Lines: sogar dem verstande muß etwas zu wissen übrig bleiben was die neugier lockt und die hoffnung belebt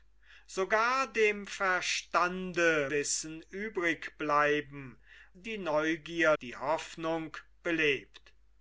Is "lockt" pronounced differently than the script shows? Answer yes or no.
yes